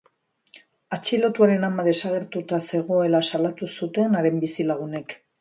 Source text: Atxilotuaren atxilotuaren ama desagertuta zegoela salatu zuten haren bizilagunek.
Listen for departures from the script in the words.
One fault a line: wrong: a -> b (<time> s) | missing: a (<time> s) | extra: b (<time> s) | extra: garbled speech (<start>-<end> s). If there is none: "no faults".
missing: atxilotuaren (1.7 s)